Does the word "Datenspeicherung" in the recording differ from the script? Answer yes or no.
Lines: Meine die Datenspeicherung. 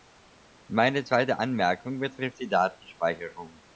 no